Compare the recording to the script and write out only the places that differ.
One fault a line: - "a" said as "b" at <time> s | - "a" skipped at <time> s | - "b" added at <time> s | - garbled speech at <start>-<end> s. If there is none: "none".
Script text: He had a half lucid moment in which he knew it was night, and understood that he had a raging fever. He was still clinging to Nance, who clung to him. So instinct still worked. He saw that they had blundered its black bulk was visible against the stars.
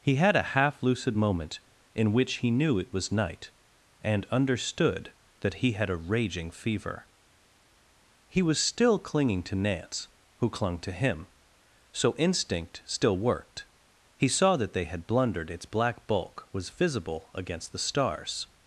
none